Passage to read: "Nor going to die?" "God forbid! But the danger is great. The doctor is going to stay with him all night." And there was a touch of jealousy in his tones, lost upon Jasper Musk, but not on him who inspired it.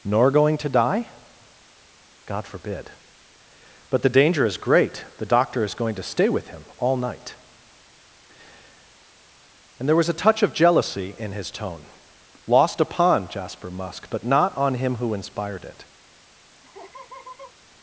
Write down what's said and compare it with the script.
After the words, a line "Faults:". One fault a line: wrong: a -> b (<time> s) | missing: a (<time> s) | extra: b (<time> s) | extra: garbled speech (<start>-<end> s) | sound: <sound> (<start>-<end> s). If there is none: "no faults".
"Nor going to die?" "God forbid! But the danger is great. The doctor is going to stay with him all night." And there was a touch of jealousy in his tone, lost upon Jasper Musk, but not on him who inspired it.
Faults:
wrong: tones -> tone (11.5 s)
sound: laugh (16.6-17.5 s)